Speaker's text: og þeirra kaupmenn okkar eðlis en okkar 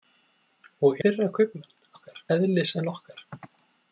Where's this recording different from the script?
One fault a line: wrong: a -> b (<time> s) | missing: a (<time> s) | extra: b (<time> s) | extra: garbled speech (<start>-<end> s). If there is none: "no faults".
no faults